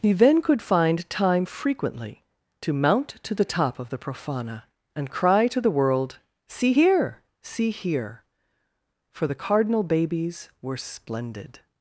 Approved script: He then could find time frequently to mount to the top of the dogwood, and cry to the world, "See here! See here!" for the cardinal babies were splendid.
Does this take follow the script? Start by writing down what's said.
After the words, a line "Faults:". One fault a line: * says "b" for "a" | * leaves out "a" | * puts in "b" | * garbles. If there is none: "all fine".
He then could find time frequently to mount to the top of the profana, and cry to the world, "See here! See here!" for the cardinal babies were splendid.
Faults:
* says "profana" for "dogwood"